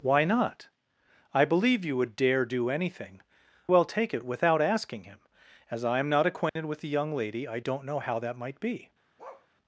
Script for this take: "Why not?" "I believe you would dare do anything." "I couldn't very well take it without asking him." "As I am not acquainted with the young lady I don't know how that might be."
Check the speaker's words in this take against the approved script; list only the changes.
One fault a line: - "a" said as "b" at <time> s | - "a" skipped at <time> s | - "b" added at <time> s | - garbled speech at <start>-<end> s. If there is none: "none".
- "I couldn't very" skipped at 3.2 s